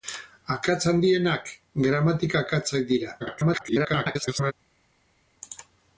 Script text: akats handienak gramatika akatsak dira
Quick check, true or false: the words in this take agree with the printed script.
false